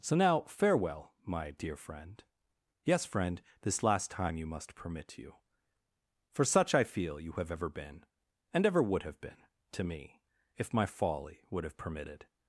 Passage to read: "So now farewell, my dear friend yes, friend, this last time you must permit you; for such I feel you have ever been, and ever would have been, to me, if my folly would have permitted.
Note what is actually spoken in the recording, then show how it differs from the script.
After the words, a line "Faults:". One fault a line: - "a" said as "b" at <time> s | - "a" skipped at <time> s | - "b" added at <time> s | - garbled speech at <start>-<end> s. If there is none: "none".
"So now farewell, my dear friend yes, friend, this last time you must permit you; for such I feel you have ever been, and ever would have been, to me, if my folly would have permitted.
Faults:
none